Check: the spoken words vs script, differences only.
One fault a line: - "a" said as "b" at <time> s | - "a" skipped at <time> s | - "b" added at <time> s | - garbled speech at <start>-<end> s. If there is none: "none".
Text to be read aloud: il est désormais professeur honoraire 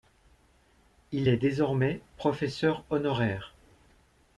none